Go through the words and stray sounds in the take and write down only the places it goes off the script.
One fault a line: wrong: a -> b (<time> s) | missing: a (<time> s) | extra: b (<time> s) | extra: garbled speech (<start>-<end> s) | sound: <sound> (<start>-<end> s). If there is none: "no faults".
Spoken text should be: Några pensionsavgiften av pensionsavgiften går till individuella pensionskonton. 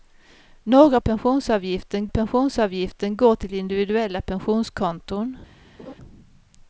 sound: laugh (5.8-5.9 s)